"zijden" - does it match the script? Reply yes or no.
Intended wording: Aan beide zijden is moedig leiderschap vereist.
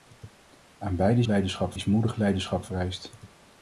no